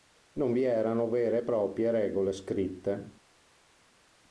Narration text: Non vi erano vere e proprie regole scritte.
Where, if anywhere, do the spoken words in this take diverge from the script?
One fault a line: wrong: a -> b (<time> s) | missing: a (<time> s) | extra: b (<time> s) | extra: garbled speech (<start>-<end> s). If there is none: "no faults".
no faults